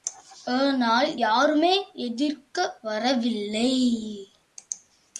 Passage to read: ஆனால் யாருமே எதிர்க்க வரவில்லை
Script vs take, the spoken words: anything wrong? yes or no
no